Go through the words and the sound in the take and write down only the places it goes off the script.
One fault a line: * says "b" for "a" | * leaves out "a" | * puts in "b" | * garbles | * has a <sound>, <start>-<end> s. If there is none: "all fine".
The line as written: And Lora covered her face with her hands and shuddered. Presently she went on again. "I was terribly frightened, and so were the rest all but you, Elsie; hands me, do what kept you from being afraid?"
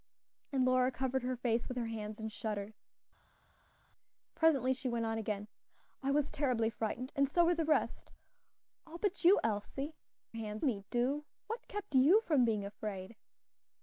all fine